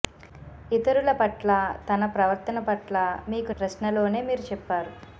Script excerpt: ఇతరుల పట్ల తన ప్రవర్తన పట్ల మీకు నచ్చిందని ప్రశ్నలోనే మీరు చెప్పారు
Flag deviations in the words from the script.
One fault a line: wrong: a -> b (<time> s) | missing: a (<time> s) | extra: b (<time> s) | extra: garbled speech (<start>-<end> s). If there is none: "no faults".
missing: నచ్చిందని (3.5 s)